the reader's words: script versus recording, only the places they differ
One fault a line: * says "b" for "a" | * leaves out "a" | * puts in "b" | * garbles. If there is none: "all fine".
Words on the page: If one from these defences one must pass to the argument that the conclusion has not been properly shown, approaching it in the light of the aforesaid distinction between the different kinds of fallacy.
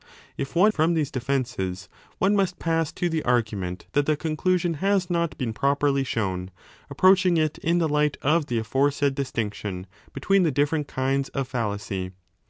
all fine